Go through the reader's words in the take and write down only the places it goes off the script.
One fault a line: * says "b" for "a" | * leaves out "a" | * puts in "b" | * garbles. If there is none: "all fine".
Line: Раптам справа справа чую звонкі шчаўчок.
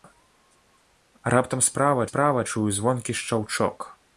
all fine